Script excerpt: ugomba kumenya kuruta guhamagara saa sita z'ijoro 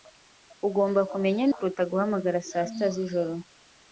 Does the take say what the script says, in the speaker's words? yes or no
yes